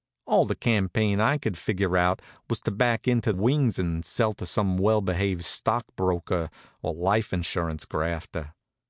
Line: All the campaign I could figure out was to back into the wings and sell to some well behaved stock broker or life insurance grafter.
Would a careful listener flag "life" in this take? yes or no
no